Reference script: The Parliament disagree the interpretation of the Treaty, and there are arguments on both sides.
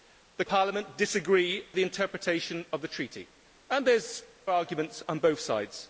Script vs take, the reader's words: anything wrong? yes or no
no